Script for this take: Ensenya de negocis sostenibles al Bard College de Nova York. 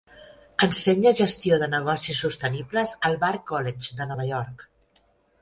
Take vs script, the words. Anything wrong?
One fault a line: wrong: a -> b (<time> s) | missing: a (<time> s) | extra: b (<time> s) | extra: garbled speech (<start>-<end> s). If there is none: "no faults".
extra: gestió (1.2 s)